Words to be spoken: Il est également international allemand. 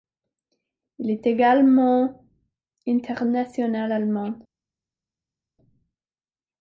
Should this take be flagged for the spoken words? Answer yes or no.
no